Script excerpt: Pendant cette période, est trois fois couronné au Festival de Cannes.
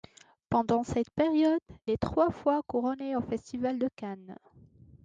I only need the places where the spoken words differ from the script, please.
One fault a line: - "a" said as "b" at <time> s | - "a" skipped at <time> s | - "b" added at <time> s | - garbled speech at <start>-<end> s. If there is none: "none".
none